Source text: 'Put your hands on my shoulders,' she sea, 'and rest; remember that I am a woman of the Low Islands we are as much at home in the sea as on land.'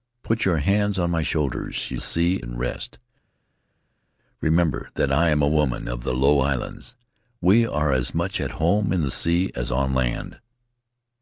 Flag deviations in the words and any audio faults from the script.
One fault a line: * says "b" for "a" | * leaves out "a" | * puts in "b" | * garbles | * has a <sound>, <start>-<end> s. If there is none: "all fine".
all fine